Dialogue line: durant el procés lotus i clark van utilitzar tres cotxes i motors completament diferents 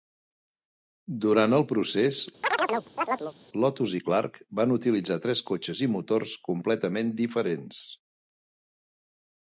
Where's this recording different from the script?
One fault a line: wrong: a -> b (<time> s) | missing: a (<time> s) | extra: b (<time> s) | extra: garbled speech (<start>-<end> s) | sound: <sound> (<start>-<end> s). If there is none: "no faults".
sound: chirp (2.4-3.3 s)